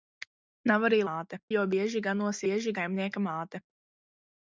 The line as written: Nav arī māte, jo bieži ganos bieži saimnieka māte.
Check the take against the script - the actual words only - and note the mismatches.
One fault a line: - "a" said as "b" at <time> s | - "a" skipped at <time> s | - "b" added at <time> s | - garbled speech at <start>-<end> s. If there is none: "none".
none